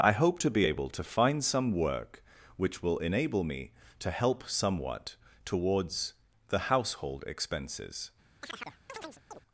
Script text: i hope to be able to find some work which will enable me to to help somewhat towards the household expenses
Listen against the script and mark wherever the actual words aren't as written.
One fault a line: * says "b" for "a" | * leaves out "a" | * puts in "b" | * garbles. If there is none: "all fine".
* leaves out "to"